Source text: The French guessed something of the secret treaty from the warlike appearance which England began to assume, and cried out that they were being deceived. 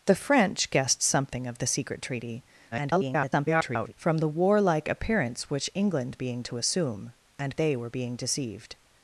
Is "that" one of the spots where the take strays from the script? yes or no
yes